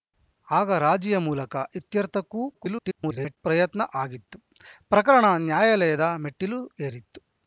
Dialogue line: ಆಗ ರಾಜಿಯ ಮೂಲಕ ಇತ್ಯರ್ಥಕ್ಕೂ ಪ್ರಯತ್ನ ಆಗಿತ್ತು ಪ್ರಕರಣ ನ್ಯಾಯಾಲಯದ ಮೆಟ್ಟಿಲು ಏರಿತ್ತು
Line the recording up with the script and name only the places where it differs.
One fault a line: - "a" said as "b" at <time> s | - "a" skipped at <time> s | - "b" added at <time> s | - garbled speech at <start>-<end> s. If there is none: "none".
- garbled speech at 2.5-3.4 s